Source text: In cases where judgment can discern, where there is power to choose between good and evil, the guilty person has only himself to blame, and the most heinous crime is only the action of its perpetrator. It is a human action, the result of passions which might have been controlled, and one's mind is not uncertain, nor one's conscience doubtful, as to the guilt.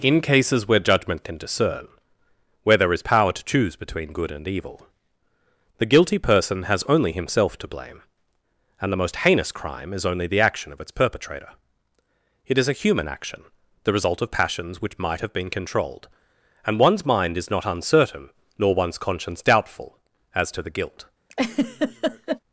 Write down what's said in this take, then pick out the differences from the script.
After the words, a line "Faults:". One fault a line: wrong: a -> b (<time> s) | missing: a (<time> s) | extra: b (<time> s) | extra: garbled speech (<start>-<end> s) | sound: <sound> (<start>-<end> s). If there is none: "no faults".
In cases where judgment can discern, where there is power to choose between good and evil, the guilty person has only himself to blame, and the most heinous crime is only the action of its perpetrator. It is a human action, the result of passions which might have been controlled, and one's mind is not uncertain, nor one's conscience doubtful, as to the guilt.
Faults:
sound: laugh (21.3-22.4 s)